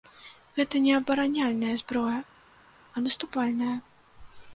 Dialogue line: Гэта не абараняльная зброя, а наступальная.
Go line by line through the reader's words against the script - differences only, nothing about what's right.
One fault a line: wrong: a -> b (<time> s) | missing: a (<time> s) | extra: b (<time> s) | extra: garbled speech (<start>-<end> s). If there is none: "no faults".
no faults